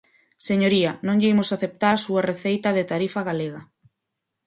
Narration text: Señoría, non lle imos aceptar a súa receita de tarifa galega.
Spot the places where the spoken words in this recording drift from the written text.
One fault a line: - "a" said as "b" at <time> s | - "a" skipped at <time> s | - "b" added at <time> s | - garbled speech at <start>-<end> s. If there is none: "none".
none